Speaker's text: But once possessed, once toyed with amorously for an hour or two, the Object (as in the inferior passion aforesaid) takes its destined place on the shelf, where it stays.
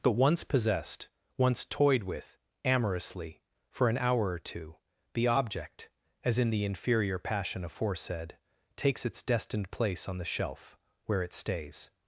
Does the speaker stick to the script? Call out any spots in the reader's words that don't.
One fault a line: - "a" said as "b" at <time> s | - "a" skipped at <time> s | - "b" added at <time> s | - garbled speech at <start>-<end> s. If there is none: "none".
none